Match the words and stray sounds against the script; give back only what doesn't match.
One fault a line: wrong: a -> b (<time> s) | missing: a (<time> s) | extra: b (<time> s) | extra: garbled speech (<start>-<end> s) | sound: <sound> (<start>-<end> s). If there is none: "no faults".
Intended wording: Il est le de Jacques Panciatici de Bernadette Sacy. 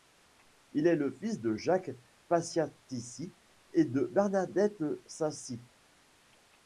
extra: fils (1.1 s)
extra: et (3.7 s)